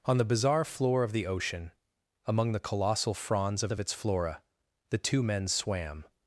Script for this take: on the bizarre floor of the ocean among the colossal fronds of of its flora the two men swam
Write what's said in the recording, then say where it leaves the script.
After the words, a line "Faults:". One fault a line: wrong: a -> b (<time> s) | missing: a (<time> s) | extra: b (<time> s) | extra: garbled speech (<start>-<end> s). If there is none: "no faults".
on the bizarre floor of the ocean among the colossal fronds of of its flora the two men swam
Faults:
no faults